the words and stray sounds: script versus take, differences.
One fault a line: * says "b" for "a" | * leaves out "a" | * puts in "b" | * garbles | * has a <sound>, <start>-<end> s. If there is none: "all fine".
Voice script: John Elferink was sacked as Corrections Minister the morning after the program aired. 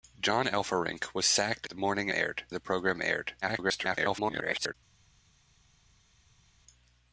* leaves out "as Corrections Minister"
* says "aired" for "after"
* garbles